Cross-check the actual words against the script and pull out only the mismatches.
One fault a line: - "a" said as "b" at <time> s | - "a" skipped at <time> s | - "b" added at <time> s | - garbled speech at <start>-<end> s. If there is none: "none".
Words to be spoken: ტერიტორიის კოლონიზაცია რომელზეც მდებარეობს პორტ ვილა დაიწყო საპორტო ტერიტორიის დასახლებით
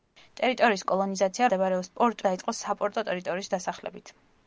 - "რომელზეც" skipped at 1.5 s
- "ვილა" skipped at 2.2 s